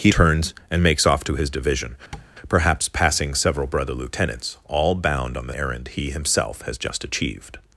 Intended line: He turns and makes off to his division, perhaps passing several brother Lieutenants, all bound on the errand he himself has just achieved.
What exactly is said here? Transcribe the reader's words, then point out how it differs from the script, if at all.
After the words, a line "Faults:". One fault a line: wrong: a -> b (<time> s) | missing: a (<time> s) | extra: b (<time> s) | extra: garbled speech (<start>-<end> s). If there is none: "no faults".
He turns and makes off to his division, perhaps passing several brother Lieutenants, all bound on the errand he himself has just achieved.
Faults:
no faults